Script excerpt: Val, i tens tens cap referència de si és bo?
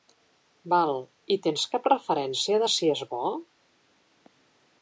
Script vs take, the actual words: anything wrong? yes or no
yes